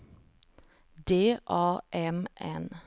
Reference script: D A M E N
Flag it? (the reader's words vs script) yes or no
yes